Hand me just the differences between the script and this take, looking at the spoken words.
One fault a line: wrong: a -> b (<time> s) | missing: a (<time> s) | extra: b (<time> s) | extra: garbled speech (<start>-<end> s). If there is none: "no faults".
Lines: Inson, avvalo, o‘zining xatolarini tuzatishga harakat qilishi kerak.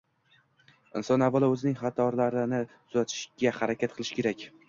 no faults